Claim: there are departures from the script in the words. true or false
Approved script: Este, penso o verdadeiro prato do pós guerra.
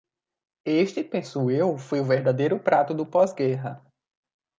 true